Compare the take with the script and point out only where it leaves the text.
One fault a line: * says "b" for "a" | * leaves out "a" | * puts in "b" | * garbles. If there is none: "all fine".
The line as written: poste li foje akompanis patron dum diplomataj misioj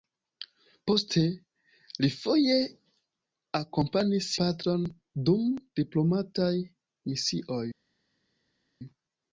all fine